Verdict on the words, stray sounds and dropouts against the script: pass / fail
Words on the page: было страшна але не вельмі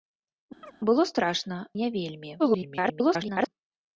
fail